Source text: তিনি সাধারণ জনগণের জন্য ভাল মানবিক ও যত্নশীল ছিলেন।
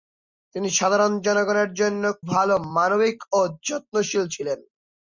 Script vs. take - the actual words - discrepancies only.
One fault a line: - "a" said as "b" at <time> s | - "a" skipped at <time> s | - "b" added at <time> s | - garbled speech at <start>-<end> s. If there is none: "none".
none